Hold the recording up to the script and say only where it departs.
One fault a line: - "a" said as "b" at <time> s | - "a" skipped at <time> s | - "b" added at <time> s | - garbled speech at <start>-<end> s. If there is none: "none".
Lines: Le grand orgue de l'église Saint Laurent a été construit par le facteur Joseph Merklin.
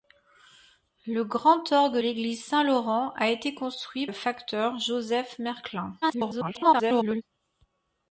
- "de" skipped at 2.0 s
- "par" skipped at 4.1 s
- garbled speech at 6.0-7.2 s